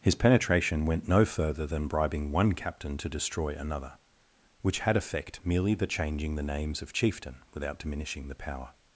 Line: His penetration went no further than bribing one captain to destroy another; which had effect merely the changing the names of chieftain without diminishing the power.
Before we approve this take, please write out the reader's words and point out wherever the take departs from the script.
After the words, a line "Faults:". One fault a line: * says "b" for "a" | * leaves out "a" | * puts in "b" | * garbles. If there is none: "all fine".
His penetration went no further than bribing one captain to destroy another; which had effect merely the changing the names of chieftain without diminishing the power.
Faults:
all fine